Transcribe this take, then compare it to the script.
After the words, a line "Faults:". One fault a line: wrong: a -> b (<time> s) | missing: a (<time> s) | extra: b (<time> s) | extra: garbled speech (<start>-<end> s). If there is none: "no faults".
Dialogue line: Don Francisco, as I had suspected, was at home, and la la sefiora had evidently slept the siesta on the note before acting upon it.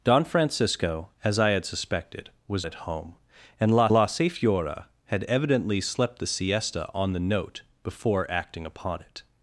Don Francisco, as I had suspected, was at home, and la la sefiora had evidently slept the siesta on the note before acting upon it.
Faults:
no faults